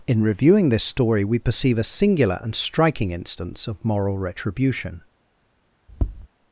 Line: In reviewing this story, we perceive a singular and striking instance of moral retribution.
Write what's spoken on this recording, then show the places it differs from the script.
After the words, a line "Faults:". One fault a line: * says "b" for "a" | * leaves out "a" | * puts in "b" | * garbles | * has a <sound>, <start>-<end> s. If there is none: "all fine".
In reviewing this story, we perceive a singular and striking instance of moral retribution.
Faults:
* has a tap, 5.9-6.3 s